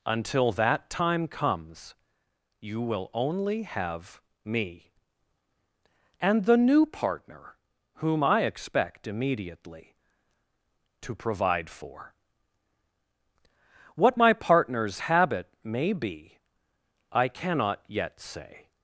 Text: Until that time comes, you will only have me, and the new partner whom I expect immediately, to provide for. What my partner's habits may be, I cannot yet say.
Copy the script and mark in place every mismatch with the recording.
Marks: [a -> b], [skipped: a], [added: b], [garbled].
Until that time comes, you will only have me, and the new partner whom I expect immediately, to provide for. What my partner's [habits -> habit] may be, I cannot yet say.